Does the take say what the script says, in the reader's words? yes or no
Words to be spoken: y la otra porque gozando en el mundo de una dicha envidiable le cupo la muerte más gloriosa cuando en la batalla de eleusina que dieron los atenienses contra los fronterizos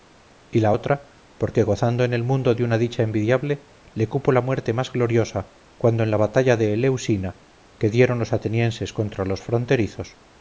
yes